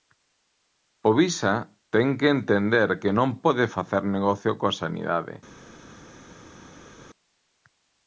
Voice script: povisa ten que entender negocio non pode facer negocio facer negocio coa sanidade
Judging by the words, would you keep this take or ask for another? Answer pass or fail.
fail